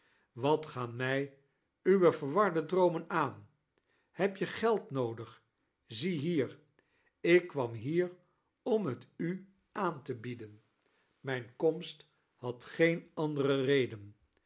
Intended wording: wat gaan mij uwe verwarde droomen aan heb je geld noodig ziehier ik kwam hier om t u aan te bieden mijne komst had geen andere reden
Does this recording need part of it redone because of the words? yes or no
no